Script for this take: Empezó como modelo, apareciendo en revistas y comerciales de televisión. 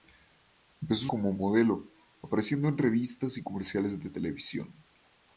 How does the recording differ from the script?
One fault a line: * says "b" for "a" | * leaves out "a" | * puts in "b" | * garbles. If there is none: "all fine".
all fine